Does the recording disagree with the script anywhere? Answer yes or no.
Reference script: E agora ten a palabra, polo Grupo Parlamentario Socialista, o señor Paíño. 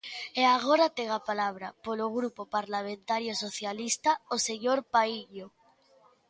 no